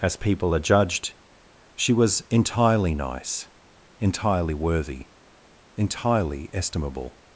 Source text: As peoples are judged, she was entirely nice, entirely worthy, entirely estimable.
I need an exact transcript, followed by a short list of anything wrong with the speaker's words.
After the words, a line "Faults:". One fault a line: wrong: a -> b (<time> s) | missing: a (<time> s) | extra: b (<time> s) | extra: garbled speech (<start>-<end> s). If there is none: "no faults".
As people are judged, she was entirely nice, entirely worthy, entirely estimable.
Faults:
wrong: peoples -> people (0.1 s)